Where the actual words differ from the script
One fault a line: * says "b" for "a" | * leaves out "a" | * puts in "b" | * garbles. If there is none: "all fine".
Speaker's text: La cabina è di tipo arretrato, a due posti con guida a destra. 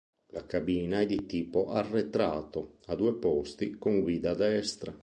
all fine